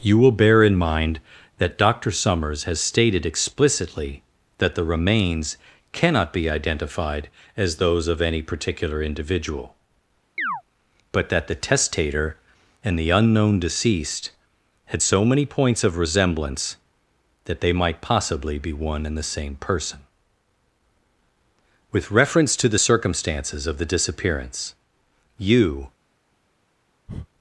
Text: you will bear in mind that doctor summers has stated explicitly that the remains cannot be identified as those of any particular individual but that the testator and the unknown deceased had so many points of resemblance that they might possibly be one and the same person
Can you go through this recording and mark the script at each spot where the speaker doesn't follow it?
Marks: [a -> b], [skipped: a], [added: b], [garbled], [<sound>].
you will bear in mind that doctor summers has stated explicitly that the remains cannot be identified as those of any particular individual [chirp] but that the testator and the unknown deceased had so many points of resemblance that they might possibly be one and the same person [added: with reference to the circumstances of the disappearance you] [breath]